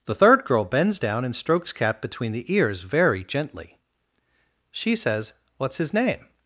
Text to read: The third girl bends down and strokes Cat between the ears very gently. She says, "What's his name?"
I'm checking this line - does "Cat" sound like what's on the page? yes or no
yes